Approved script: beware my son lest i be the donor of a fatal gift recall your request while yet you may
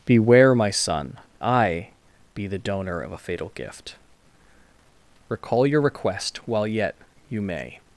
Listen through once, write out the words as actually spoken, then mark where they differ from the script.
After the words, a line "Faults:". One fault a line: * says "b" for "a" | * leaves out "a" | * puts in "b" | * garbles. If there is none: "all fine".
beware my son i be the donor of a fatal gift recall your request while yet you may
Faults:
* leaves out "lest"